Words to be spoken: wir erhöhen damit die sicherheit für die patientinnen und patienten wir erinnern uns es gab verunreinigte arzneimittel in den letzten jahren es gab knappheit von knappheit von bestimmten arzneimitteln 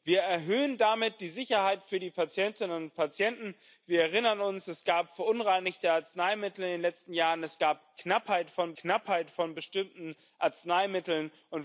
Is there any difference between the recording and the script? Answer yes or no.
no